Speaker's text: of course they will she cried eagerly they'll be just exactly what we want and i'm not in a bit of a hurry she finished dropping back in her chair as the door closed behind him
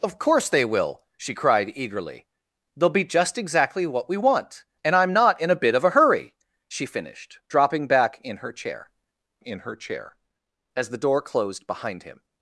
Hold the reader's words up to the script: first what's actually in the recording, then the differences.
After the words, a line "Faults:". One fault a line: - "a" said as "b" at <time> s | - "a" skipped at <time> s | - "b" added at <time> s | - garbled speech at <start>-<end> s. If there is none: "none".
of course they will she cried eagerly they'll be just exactly what we want and i'm not in a bit of a hurry she finished dropping back in her chair in her chair as the door closed behind him
Faults:
- "in her chair" added at 9.4 s